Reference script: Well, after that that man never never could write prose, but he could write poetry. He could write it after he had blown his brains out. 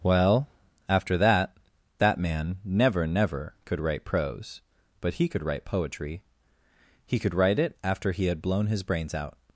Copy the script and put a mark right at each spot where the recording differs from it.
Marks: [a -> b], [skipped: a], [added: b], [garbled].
Well, after that that man never never could write prose, but he could write poetry. He could write it after he had blown his brains out.